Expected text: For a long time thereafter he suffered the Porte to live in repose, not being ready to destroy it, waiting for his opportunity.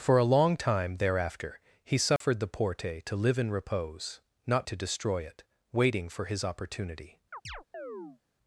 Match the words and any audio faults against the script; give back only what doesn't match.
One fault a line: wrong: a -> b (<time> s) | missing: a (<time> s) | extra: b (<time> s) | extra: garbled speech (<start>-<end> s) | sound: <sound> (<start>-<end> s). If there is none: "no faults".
sound: dropout (2.2-2.2 s)
missing: being ready (4.7 s)
sound: chirp (7.3-8.2 s)